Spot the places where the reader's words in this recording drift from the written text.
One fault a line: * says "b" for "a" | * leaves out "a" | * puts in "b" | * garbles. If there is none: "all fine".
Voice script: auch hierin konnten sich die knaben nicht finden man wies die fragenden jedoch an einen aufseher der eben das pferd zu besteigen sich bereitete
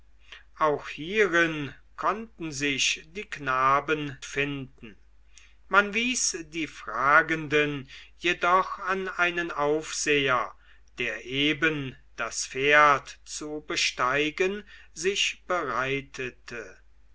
* leaves out "nicht"